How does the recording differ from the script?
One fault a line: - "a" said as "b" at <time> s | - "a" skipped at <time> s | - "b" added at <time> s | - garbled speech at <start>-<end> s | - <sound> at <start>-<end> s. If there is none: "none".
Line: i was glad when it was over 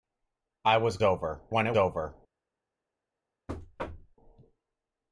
- "glad" said as "over" at 1.0 s
- "was" skipped at 1.7 s
- thud at 3.5-4.2 s